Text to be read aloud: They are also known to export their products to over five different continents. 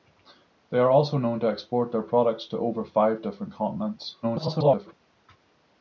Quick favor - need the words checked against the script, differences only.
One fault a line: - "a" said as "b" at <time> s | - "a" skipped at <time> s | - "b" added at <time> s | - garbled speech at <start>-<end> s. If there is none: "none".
- garbled speech at 4.2-4.9 s